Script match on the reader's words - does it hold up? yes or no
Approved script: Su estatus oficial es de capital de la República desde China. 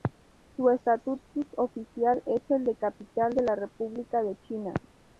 no